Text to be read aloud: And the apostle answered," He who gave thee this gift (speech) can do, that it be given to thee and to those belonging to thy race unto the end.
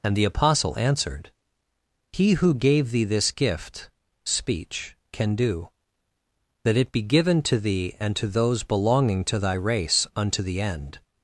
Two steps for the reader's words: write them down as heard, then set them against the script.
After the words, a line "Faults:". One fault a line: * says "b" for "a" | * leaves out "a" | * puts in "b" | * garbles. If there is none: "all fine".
And the apostle answered," He who gave thee this gift (speech) can do, that it be given to thee and to those belonging to thy race unto the end.
Faults:
all fine